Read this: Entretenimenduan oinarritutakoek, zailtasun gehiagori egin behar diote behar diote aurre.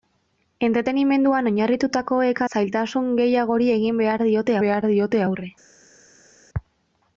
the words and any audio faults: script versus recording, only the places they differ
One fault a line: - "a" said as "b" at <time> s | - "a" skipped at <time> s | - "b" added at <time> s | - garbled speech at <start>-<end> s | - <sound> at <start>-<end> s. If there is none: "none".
none